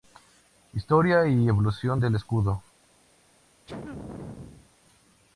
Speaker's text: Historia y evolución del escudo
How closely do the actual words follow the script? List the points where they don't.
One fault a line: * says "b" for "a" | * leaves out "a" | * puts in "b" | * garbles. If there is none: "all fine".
all fine